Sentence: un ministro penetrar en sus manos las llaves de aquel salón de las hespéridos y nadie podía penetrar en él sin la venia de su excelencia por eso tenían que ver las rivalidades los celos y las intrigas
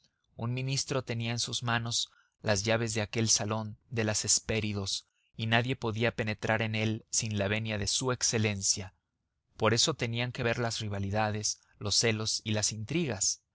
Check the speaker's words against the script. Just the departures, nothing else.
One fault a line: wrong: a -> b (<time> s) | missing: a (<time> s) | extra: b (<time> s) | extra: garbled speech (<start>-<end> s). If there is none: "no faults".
wrong: penetrar -> tenía (1.0 s)